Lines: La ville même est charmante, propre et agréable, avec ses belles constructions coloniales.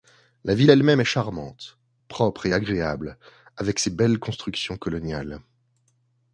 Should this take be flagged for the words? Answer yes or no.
yes